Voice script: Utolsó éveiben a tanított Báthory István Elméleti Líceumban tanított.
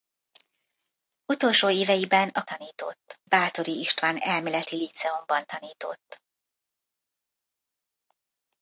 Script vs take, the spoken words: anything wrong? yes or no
no